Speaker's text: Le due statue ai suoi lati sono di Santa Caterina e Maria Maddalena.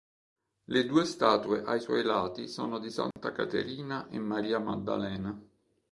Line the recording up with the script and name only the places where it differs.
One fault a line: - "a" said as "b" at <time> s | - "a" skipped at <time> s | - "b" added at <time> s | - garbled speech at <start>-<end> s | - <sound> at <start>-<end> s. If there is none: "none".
- dropout at 3.1-3.2 s